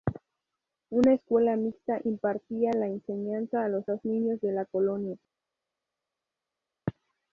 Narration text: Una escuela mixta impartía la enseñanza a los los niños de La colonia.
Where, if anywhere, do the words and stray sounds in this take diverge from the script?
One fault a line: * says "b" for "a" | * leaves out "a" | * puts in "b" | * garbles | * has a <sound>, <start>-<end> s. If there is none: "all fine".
all fine